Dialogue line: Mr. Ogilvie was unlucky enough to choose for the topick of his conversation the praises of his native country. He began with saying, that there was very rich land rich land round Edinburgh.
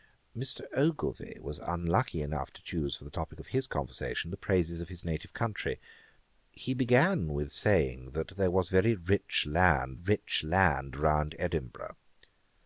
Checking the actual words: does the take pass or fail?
pass